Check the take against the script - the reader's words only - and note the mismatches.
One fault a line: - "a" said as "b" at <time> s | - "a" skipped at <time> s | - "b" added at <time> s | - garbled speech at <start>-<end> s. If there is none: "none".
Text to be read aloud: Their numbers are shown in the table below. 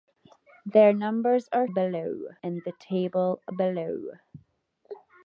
- "shown" said as "below" at 1.7 s